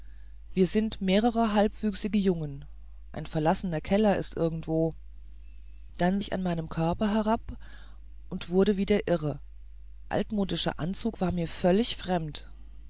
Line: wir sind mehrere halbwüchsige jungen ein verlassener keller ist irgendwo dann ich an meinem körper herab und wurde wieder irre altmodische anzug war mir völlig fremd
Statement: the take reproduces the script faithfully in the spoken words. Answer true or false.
true